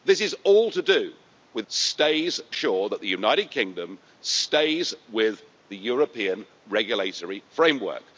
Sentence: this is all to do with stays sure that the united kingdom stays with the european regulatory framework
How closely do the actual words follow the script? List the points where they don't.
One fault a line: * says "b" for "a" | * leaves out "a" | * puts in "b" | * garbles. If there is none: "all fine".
all fine